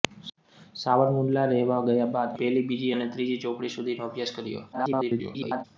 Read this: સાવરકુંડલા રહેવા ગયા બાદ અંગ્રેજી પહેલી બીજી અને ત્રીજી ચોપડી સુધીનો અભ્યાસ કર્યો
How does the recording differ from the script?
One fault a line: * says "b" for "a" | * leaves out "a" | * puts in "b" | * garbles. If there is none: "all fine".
* leaves out "અંગ્રેજી"
* garbles